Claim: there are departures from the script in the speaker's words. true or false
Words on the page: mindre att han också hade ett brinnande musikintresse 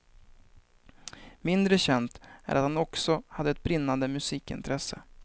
true